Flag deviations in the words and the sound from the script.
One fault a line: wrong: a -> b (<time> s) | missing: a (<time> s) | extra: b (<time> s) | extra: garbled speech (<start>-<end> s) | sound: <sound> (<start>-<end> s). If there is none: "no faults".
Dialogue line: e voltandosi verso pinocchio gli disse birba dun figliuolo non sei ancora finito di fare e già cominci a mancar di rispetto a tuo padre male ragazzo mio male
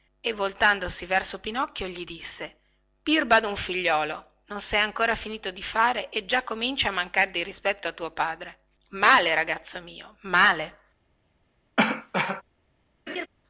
sound: cough (11.8-12.4 s)
sound: laugh (13.1-13.3 s)